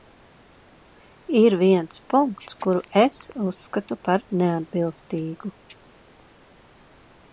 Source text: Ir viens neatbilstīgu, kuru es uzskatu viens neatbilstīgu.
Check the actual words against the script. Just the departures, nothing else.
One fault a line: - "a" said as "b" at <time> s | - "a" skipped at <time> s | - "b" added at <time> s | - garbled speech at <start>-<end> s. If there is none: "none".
- "neatbilstīgu" said as "punkts" at 2.1 s
- "viens" said as "par" at 4.1 s